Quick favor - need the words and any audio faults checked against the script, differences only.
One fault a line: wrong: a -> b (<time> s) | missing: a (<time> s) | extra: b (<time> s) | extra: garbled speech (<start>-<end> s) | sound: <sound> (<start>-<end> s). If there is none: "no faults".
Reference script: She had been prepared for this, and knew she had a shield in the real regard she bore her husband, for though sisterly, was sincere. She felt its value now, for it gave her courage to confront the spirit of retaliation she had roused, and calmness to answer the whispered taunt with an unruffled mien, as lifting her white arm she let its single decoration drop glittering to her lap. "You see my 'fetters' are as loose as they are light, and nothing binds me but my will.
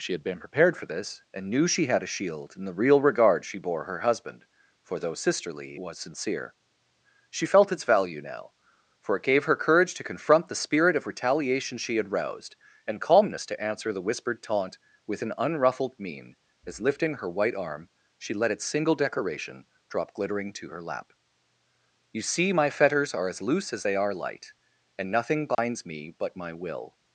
sound: dropout (25.5-25.6 s)